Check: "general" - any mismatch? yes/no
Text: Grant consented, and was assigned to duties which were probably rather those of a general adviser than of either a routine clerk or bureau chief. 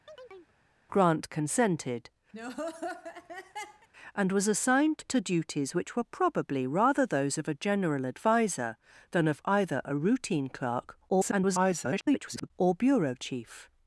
no